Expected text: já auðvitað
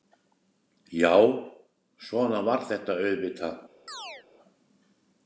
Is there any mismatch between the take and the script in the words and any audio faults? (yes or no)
yes